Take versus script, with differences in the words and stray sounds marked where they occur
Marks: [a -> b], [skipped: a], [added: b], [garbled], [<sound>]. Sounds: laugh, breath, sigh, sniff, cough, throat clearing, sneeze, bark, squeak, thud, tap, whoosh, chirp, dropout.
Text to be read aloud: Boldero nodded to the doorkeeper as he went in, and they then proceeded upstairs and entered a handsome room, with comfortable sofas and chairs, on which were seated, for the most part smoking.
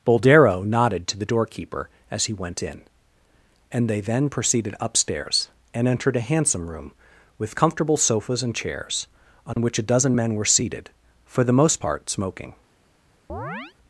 Boldero nodded to the doorkeeper as he went in, and they then proceeded upstairs and entered a handsome room, with comfortable sofas and chairs, on [dropout] which [added: a dozen men] were seated, for the most part smoking. [chirp]